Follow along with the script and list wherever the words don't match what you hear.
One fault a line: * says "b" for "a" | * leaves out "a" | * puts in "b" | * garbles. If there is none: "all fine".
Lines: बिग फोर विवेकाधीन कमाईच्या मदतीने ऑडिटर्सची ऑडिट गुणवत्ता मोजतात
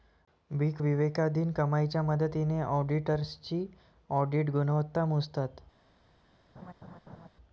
* leaves out "फोर"